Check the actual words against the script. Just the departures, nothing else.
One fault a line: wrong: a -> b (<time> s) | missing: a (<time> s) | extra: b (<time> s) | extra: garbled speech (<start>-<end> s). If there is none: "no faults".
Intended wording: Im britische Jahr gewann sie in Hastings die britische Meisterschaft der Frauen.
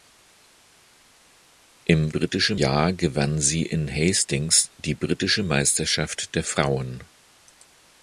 no faults